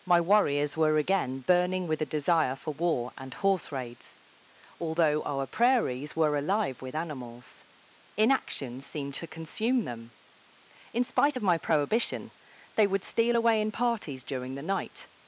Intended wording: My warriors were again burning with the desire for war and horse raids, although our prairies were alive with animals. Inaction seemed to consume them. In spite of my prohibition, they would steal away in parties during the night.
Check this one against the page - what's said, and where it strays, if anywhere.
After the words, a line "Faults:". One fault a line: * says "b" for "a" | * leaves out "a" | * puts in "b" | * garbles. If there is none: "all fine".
My warriors were again burning with the desire for war and horse raids, although our prairies were alive with animals. Inaction seemed to consume them. In spite of my prohibition, they would steal away in parties during the night.
Faults:
all fine